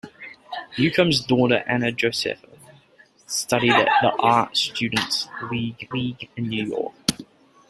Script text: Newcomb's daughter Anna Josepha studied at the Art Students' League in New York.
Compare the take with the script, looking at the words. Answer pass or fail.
fail